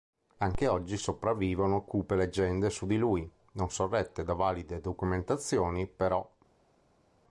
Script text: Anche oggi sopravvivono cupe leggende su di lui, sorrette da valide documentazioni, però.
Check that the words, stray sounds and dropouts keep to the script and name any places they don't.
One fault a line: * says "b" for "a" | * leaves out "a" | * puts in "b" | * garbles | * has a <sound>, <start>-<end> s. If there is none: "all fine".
* puts in "non"